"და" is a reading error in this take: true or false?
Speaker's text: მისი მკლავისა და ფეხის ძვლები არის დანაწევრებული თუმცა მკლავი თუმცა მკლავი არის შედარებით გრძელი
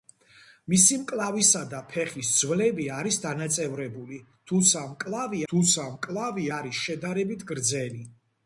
false